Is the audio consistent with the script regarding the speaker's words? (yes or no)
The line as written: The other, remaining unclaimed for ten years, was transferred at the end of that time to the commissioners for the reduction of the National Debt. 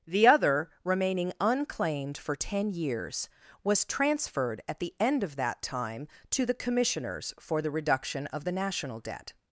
yes